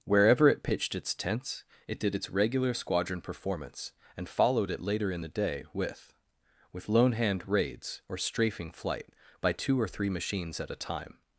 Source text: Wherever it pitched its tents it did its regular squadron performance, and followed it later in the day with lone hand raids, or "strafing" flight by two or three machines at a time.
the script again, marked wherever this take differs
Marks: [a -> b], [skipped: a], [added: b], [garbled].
Wherever it pitched its tents it did its regular squadron performance, and followed it later in the day with [added: with] lone hand raids, or "strafing" flight by two or three machines at a time.